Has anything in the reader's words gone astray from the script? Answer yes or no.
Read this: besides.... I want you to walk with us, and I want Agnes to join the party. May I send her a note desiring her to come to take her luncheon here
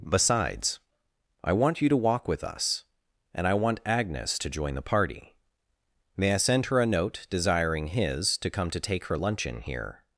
yes